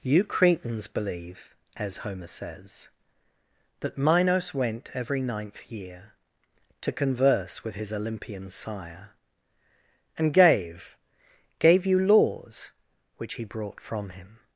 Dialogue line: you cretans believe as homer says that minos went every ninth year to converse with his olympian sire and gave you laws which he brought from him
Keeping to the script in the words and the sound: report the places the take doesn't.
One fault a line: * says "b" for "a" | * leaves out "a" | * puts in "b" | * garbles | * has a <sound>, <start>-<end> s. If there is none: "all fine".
* puts in "gave"